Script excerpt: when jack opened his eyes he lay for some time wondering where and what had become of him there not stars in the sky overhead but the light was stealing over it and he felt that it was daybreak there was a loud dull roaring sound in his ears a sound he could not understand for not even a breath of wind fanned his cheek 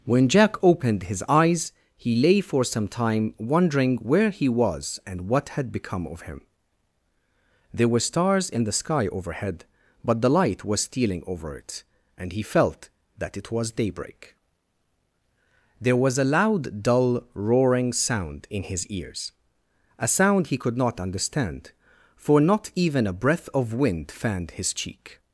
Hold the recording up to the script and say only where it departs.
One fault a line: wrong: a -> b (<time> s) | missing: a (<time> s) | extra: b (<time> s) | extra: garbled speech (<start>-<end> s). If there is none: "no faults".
extra: he was (4.3 s)
wrong: not -> were (7.9 s)